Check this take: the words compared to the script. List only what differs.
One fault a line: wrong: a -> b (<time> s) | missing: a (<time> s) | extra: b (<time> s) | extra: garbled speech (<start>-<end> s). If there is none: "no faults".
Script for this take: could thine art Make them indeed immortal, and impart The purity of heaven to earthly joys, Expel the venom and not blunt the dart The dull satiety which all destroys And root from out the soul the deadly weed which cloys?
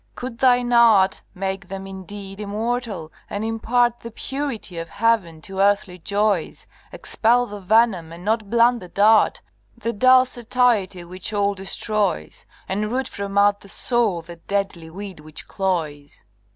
no faults